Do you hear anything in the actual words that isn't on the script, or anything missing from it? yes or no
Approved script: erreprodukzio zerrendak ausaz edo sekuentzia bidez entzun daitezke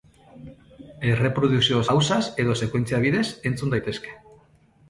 yes